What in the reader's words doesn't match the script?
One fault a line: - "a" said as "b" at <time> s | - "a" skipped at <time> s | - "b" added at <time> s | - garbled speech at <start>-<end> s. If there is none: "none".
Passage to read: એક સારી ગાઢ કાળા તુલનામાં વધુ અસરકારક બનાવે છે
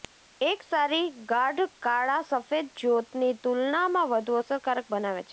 - "સફેદ જ્યોતની" added at 2.2 s